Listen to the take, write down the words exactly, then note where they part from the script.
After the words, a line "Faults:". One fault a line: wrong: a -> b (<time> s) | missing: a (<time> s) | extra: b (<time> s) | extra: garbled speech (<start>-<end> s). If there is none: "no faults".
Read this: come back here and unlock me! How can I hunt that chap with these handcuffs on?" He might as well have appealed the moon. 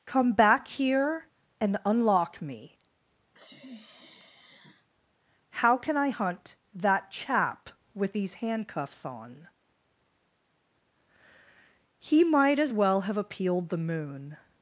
come back here and unlock me! How can I hunt that chap with these handcuffs on?" He might as well have appealed the moon.
Faults:
no faults